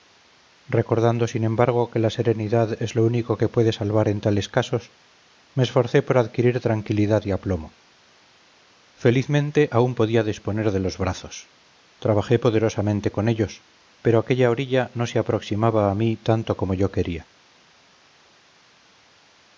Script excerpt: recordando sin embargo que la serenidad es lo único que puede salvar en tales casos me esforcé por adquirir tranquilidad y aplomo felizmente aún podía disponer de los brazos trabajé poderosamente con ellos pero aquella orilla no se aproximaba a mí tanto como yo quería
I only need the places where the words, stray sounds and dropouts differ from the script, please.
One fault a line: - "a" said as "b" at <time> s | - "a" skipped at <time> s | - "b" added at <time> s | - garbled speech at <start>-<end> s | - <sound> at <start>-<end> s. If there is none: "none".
none